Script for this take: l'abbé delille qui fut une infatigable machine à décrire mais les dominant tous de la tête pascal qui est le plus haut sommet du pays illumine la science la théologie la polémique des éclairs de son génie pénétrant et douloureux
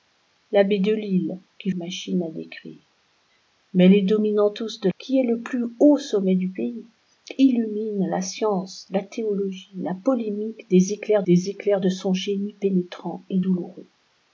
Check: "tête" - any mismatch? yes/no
yes